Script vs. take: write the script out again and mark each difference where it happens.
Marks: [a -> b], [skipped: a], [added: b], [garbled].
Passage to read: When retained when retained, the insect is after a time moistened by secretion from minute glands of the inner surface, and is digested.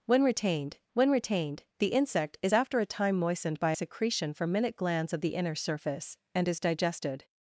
When retained when retained, the insect is after a time moistened by secretion from minute glands of the inner surface, and is digested.